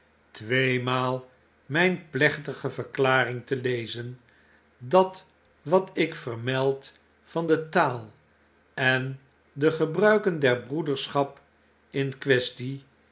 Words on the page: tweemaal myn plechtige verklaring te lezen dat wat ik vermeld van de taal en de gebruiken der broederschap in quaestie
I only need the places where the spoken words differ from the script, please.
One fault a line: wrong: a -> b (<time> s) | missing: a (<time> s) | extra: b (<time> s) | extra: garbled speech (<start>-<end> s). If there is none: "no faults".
no faults